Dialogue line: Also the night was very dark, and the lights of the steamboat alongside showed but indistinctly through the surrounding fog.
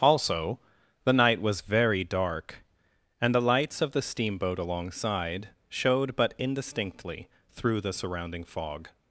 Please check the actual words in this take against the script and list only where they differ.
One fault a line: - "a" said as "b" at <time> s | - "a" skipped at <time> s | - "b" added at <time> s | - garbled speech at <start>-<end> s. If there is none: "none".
none